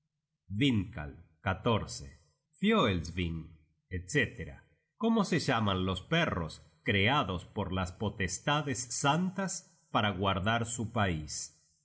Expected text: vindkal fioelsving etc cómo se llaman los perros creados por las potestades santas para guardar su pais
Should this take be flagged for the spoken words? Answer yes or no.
no